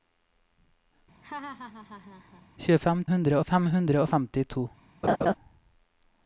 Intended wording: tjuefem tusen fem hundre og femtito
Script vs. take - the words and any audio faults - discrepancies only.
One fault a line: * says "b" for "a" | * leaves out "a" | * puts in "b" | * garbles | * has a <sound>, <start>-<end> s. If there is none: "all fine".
* has a laugh, 1.2-2.5 s
* says "hundre" for "tusen"
* has a laugh, 5.0-5.4 s